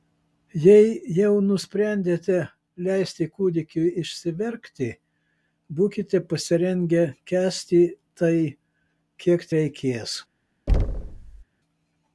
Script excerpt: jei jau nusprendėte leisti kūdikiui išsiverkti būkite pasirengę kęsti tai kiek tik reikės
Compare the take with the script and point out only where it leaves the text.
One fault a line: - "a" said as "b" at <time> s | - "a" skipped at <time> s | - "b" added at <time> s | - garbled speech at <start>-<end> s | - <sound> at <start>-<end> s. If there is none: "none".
- "tik" skipped at 9.5 s
- thud at 10.7-11.4 s